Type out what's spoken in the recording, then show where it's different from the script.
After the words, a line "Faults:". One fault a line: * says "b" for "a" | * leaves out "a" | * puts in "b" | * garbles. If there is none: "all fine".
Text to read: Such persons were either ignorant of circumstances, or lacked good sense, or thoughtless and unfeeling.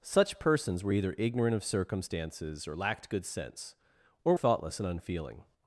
Such persons were either ignorant of circumstances, or lacked good sense, or thoughtless and unfeeling.
Faults:
all fine